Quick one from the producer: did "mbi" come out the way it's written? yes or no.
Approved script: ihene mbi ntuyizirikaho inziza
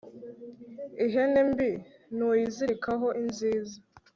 yes